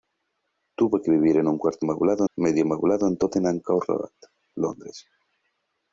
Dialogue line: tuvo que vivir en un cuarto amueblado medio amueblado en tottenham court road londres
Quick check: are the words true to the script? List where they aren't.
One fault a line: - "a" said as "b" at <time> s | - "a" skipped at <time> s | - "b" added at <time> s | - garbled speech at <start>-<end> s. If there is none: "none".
none